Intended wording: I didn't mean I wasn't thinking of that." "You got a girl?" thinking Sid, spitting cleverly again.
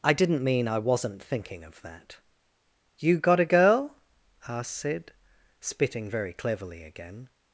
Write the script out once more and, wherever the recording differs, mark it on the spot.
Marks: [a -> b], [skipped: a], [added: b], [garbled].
I didn't mean I wasn't thinking of that." "You got a girl?" [thinking -> asked] Sid, spitting [added: very] cleverly again.